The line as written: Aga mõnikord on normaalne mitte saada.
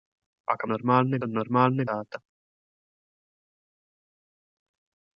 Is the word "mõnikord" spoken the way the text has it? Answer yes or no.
no